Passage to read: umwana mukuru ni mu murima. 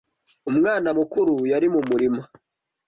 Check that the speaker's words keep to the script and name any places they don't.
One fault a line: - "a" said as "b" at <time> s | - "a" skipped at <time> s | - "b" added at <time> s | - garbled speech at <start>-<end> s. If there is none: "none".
- "ni" said as "yari" at 1.5 s